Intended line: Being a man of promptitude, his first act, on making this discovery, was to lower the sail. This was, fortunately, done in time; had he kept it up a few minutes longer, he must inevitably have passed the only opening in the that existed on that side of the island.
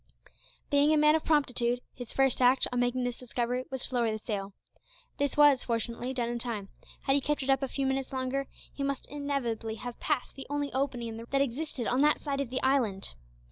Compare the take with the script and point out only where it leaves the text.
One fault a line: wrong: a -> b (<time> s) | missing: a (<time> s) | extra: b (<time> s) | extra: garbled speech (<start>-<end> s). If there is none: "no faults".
no faults